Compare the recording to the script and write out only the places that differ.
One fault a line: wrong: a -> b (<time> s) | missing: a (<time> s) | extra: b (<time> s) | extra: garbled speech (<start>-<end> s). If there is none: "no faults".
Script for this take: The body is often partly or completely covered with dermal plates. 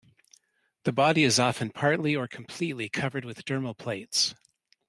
no faults